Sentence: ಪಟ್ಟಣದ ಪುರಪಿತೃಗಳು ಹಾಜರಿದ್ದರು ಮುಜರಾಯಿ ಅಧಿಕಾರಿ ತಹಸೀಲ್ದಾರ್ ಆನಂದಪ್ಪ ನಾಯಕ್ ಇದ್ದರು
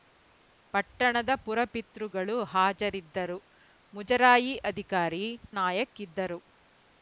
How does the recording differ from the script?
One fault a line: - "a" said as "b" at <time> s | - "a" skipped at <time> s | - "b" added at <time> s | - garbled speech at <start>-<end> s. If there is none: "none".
- "ತಹಸೀಲ್ದಾರ್ ಆನಂದಪ್ಪ" skipped at 5.2 s